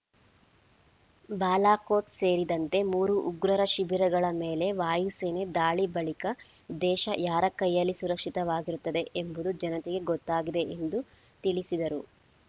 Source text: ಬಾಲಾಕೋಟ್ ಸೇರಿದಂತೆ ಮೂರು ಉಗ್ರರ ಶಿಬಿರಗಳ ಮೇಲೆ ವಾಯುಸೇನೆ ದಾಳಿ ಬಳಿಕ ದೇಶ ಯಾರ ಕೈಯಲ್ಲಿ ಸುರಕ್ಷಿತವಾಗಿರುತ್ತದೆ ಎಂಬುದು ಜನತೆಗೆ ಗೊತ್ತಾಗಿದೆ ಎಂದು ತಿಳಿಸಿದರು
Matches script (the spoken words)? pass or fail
pass